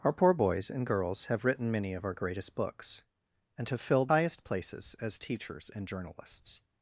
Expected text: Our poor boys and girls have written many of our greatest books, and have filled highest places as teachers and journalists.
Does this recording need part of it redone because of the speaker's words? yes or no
no